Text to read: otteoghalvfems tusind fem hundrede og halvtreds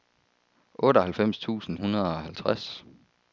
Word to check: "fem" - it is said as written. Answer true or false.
false